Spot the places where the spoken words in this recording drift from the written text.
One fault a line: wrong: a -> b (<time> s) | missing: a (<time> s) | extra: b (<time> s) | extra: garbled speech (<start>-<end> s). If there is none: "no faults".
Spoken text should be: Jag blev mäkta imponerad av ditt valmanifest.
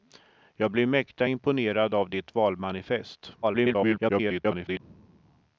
extra: garbled speech (3.4-4.8 s)